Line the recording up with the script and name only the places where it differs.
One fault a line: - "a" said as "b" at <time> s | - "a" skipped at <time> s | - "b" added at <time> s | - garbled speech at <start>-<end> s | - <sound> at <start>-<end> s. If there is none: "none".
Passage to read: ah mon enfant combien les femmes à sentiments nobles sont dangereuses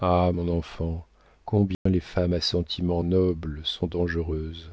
- dropout at 1.7-1.9 s